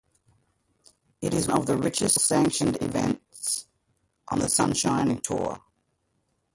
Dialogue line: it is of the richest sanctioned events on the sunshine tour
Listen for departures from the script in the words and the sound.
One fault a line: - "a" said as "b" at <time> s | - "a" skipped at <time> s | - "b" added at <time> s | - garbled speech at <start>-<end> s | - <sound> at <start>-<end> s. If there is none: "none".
none